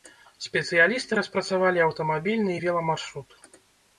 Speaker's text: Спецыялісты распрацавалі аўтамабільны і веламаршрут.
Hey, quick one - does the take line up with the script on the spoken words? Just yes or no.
yes